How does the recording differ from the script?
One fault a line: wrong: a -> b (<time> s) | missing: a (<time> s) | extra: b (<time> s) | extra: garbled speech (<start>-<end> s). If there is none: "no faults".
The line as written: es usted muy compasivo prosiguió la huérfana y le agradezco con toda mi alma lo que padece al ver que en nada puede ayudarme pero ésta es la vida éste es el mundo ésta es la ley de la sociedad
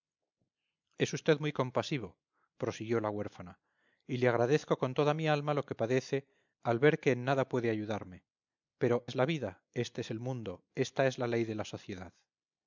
missing: ésta (9.1 s)